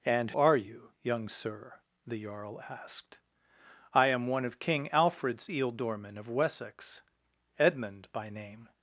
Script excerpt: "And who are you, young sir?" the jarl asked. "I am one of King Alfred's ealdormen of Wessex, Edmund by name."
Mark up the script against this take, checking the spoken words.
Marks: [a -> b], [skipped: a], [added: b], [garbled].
"And [skipped: who] are you, young sir?" the jarl asked. "I am one of King Alfred's ealdormen of Wessex, Edmund by name."